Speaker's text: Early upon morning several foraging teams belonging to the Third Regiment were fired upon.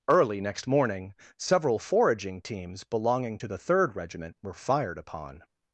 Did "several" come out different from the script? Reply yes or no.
no